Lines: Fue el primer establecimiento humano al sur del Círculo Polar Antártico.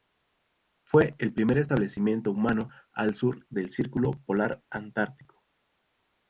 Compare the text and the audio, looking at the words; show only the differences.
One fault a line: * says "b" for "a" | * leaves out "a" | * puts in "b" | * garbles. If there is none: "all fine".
all fine